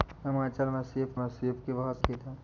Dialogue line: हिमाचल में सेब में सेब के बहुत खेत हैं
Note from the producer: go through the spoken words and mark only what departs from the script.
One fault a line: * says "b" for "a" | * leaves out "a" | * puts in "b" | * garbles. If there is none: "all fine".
all fine